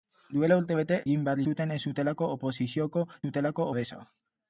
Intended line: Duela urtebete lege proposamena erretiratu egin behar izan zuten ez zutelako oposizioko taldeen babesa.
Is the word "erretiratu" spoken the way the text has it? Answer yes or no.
no